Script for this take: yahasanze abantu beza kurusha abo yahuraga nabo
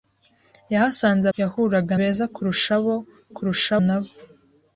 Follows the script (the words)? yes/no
no